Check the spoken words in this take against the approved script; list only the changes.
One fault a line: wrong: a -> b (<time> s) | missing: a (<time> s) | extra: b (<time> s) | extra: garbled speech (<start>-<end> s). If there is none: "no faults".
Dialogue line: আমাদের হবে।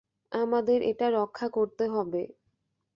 extra: এটা রক্ষা করতে (0.8 s)